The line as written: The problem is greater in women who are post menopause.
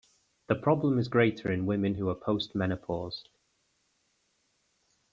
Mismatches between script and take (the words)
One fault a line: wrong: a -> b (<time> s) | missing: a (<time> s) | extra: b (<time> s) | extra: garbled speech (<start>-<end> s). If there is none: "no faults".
no faults